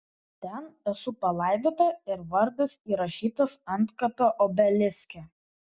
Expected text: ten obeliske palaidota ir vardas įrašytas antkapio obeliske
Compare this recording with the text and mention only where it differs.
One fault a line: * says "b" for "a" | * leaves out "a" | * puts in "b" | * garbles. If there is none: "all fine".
* says "esu" for "obeliske"